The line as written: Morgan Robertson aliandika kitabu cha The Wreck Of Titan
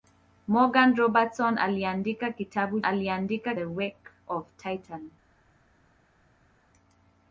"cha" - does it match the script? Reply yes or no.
no